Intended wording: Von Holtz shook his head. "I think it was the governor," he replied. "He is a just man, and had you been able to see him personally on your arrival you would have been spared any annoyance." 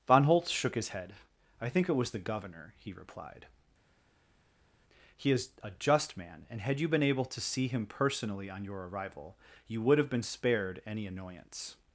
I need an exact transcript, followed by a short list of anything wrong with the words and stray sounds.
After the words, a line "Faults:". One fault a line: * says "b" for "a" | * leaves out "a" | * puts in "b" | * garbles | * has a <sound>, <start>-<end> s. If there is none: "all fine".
Von Holtz shook his head. "I think it was the governor," he replied. "He is a just man, and had you been able to see him personally on your arrival you would have been spared any annoyance."
Faults:
all fine